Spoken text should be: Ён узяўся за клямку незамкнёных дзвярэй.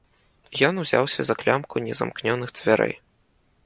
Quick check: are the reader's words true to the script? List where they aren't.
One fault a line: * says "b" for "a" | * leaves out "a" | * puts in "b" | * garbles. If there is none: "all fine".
all fine